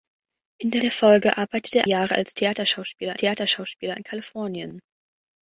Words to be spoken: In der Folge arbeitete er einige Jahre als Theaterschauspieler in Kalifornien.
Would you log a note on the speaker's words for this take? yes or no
yes